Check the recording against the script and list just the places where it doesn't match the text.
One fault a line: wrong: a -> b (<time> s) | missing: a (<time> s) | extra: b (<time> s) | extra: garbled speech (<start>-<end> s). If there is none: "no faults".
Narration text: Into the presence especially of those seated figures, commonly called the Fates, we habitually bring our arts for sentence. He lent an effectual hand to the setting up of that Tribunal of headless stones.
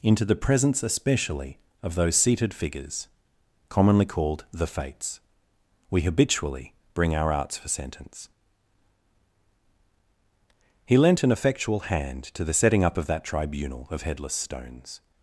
no faults